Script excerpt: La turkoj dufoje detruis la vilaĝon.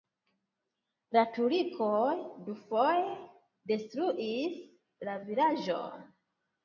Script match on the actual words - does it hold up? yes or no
yes